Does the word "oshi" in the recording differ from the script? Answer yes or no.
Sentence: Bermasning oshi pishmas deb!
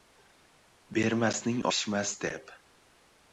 yes